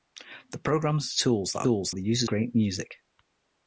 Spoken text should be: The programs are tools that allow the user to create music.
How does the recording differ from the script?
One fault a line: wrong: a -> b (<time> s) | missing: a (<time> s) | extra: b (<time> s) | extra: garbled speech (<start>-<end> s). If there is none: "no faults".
wrong: allow -> tools (1.6 s)
missing: to (2.3 s)